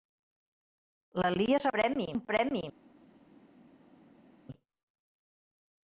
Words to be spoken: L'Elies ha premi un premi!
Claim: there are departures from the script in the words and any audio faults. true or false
false